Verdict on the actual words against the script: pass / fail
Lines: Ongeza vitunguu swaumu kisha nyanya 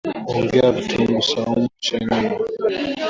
pass